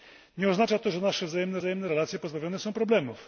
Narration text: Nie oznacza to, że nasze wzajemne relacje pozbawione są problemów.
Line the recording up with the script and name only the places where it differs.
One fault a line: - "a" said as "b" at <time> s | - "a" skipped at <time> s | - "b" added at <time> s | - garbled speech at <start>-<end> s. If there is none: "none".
- "wzajemne" added at 1.5 s